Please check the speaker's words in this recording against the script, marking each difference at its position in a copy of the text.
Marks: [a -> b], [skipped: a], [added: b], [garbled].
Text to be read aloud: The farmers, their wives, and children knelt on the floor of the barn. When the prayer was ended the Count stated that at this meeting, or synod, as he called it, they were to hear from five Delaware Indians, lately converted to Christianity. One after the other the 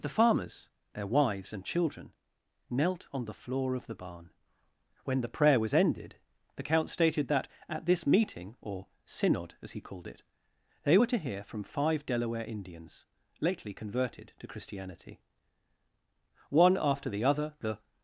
The farmers, their wives, and children knelt on the floor of the barn. When the prayer was ended the Count stated that at this meeting, or synod, as he called it, they were to hear from five Delaware Indians, lately converted to Christianity. One after the other the